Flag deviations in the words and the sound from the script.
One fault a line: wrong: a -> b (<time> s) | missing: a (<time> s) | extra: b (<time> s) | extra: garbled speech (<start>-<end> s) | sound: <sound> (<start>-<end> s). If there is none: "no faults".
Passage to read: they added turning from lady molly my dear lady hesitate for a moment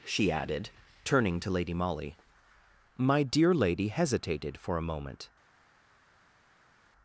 wrong: they -> she (0.1 s)
wrong: from -> to (1.4 s)
wrong: hesitate -> hesitated (3.9 s)